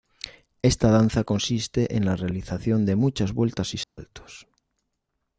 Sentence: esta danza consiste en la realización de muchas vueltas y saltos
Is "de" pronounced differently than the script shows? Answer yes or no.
no